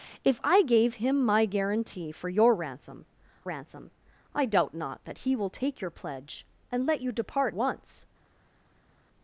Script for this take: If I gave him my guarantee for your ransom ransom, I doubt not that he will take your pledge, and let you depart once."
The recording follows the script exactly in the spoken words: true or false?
true